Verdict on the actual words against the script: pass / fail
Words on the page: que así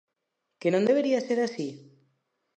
fail